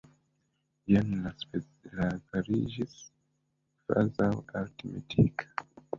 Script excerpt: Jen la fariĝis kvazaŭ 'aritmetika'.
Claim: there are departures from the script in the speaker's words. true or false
false